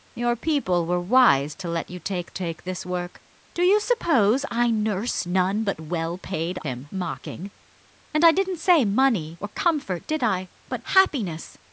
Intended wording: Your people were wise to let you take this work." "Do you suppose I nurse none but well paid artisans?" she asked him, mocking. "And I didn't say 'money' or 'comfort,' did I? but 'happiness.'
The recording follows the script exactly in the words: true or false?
false